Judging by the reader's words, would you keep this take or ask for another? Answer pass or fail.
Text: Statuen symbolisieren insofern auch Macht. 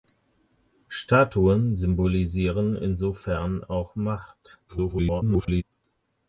fail